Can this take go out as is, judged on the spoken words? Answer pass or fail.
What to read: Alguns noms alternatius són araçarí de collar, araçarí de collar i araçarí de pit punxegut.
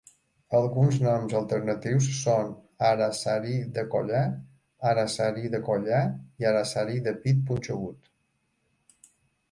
pass